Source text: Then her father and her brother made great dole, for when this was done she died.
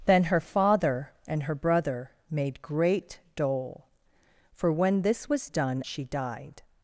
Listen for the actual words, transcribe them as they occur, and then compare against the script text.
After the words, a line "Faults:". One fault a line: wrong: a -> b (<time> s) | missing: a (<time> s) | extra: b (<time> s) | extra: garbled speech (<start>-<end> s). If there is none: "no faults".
Then her father and her brother made great dole, for when this was done she died.
Faults:
no faults